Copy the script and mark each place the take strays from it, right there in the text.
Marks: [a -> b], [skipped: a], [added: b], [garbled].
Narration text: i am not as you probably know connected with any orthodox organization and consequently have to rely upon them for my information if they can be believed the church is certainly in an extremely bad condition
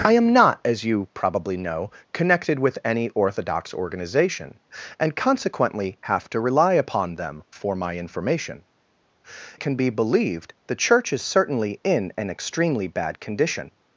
i am not as you probably know connected with any orthodox organization and consequently have to rely upon them for my information [skipped: if they] can be believed the church is certainly in an extremely bad condition